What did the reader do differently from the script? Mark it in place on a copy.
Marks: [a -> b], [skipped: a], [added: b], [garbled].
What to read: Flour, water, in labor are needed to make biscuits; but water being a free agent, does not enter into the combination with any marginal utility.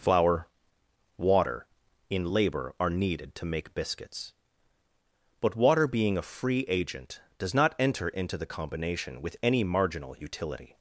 Flour, water, in labor are needed to make biscuits; but water being a free agent, does not enter into the combination with any marginal utility.